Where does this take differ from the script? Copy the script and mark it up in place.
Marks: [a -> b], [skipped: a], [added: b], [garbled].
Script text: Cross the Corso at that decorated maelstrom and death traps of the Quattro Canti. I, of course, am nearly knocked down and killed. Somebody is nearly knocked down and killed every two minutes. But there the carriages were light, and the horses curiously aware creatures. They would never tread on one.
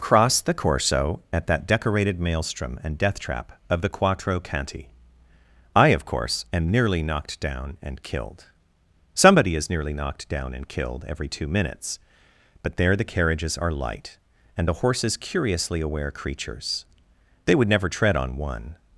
Cross the Corso at that decorated maelstrom and death [traps -> trap] of the Quattro Canti. I, of course, am nearly knocked down and killed. Somebody is nearly knocked down and killed every two minutes. But there the carriages [were -> are] light, and the horses curiously aware creatures. They would never tread on one.